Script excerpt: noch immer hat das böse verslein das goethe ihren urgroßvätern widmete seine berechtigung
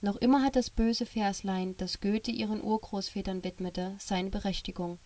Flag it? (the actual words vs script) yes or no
no